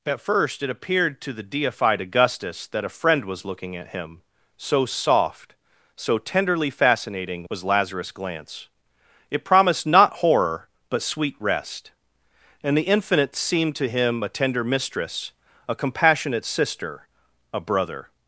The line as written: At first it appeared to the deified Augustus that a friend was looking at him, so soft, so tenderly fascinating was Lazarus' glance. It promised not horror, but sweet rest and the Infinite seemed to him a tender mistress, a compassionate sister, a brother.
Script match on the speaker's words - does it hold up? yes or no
yes